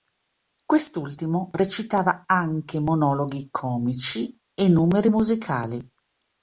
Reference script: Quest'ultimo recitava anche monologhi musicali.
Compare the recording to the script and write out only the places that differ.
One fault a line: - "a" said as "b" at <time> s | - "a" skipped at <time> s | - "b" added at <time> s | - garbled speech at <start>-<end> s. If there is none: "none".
- "comici e numeri" added at 3.5 s